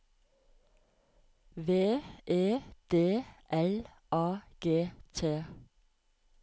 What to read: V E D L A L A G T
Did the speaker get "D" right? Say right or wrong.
right